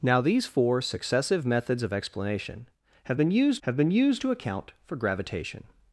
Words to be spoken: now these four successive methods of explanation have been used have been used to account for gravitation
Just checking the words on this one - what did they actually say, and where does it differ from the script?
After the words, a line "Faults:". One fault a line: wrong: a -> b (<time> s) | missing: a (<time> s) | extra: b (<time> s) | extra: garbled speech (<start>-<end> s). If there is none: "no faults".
now these four successive methods of explanation have been used have been used to account for gravitation
Faults:
no faults